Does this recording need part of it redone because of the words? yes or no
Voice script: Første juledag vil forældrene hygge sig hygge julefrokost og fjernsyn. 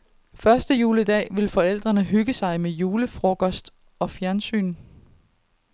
yes